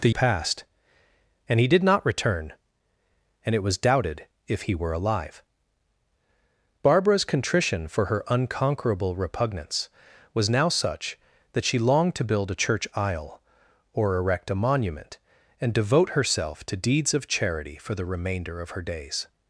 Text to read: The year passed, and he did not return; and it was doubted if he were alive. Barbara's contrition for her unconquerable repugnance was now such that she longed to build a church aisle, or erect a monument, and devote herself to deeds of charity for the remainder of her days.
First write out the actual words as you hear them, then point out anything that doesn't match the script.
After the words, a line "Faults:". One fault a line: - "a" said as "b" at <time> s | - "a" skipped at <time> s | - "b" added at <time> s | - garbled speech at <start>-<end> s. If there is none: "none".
The passed, and he did not return; and it was doubted if he were alive. Barbara's contrition for her unconquerable repugnance was now such that she longed to build a church aisle, or erect a monument, and devote herself to deeds of charity for the remainder of her days.
Faults:
- "year" skipped at 0.1 s